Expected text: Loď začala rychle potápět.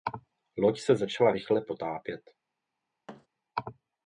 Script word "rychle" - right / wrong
right